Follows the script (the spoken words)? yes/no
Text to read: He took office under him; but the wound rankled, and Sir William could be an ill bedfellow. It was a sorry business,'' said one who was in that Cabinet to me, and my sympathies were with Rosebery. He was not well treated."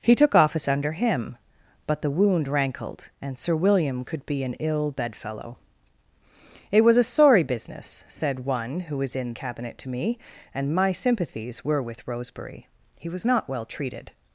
no